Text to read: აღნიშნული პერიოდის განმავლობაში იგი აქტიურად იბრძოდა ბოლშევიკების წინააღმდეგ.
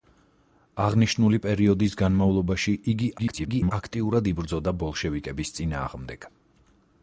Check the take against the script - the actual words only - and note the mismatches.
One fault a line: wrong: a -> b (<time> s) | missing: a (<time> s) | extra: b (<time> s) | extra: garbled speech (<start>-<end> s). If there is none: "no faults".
extra: garbled speech (3.2-3.7 s)